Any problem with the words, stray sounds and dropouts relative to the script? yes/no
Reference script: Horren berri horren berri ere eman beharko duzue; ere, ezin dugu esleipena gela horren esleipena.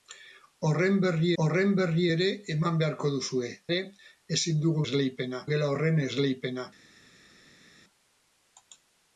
no